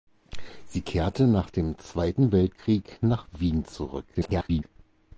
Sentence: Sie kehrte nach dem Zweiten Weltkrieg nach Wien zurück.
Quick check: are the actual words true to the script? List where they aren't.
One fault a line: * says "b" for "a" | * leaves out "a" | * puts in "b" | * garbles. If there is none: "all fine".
* garbles